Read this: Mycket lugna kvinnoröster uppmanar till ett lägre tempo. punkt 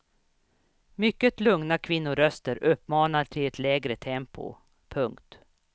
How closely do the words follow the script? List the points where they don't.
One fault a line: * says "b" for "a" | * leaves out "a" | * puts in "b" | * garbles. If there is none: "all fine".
all fine